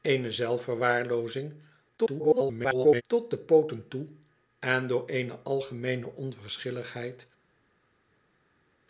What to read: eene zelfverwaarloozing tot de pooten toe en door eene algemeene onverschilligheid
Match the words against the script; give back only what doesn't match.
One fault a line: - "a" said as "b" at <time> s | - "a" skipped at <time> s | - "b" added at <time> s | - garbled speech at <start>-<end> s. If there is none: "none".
- garbled speech at 2.0-3.0 s